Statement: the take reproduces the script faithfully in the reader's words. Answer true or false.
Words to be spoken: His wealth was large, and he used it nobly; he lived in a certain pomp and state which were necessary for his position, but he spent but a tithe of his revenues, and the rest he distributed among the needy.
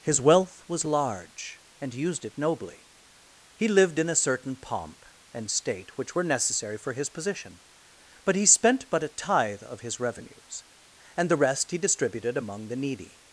false